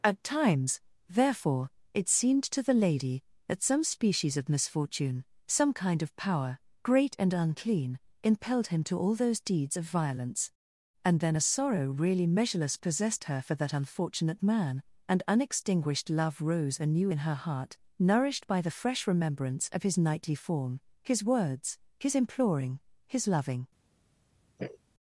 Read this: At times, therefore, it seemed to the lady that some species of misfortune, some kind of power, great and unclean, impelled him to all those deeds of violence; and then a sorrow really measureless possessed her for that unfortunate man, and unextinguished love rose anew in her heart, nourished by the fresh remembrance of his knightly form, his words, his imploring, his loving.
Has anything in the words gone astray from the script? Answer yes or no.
no